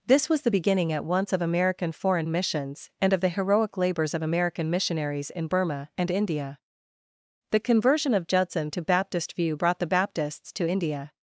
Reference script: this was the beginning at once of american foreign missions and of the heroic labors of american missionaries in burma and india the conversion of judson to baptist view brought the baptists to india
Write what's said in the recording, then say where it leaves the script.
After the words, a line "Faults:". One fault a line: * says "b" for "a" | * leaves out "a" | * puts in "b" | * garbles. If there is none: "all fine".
this was the beginning at once of american foreign missions and of the heroic labors of american missionaries in burma and india the conversion of judson to baptist view brought the baptists to india
Faults:
all fine